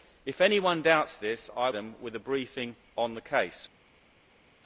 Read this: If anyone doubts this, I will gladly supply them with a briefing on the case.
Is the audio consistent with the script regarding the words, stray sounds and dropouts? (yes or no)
no